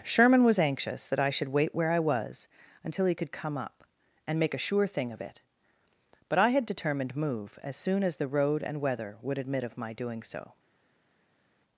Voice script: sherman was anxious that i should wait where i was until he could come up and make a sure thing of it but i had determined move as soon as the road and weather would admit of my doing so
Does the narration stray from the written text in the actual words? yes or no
no